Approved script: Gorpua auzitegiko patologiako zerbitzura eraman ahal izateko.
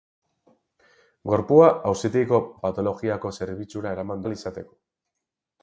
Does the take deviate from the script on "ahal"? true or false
false